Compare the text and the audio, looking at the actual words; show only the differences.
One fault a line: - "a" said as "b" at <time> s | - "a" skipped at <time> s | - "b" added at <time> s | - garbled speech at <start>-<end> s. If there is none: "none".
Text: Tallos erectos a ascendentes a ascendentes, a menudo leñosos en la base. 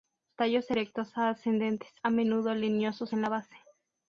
- "ascendentes a" skipped at 2.1 s